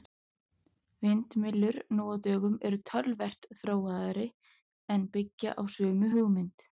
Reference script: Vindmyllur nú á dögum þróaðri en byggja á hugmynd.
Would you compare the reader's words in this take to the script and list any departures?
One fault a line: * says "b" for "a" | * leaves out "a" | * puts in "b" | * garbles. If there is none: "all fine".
* puts in "eru töluvert"
* puts in "sömu"